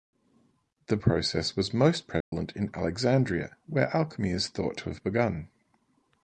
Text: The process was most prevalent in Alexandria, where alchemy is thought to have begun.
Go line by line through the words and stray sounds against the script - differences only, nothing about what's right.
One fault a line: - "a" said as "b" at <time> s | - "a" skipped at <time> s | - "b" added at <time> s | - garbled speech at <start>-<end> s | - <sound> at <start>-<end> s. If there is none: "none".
- dropout at 2.2-2.3 s